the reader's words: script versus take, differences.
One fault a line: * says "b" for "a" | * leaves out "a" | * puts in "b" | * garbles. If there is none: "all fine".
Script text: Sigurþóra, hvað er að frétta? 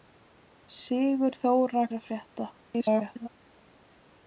* leaves out "hvað"
* garbles